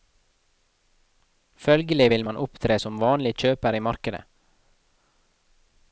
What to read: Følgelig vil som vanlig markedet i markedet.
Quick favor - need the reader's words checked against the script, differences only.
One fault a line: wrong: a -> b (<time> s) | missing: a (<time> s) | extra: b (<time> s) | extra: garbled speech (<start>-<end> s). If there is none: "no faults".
extra: man opptre (2.3 s)
wrong: markedet -> kjøper (3.4 s)